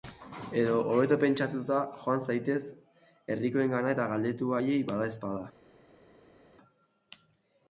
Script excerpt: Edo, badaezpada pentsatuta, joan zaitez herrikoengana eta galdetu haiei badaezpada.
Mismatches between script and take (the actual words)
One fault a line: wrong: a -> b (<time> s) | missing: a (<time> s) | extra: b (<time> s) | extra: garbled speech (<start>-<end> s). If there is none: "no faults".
wrong: badaezpada -> hobeto (0.9 s)